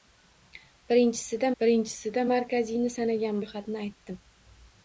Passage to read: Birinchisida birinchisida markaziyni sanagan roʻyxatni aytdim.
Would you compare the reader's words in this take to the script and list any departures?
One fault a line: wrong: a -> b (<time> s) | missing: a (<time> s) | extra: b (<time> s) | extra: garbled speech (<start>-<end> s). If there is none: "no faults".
no faults